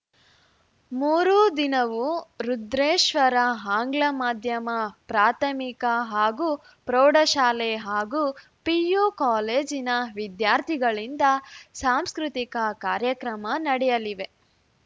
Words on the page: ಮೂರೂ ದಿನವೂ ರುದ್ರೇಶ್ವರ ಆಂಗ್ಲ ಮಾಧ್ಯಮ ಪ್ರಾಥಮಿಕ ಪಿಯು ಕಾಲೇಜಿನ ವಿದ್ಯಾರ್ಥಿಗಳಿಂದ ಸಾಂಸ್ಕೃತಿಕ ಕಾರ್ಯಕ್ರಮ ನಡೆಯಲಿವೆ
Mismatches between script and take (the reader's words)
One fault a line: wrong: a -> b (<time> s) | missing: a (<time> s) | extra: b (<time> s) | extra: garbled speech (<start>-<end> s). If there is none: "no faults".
extra: ಹಾಗೂ ಪ್ರೌಢಶಾಲೆ ಹಾಗೂ (6.1 s)